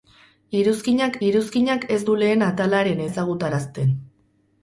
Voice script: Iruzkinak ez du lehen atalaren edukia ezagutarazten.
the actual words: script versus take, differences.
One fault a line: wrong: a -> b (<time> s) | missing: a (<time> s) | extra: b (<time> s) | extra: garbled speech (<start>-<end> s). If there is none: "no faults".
extra: iruzkinak (1.3 s)
missing: edukia (3.1 s)